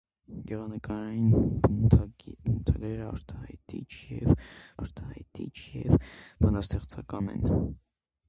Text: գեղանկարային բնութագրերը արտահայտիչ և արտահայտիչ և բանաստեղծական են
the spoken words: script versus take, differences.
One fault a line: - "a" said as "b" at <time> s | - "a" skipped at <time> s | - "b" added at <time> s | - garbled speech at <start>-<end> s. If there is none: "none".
none